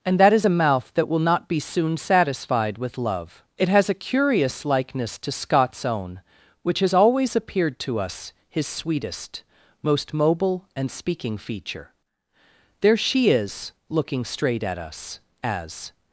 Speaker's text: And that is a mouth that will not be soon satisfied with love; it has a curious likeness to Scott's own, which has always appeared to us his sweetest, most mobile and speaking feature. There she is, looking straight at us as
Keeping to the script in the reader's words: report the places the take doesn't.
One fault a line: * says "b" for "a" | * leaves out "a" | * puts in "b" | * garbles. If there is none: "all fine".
all fine